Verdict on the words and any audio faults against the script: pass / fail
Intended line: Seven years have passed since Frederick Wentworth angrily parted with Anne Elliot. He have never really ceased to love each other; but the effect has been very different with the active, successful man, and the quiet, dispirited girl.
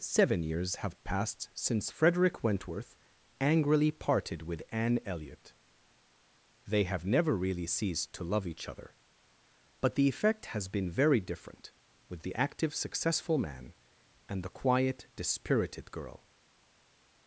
fail